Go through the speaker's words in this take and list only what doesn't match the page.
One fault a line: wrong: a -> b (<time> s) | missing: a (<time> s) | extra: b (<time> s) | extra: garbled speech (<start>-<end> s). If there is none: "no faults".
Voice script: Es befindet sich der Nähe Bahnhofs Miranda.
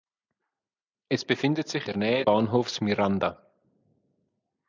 no faults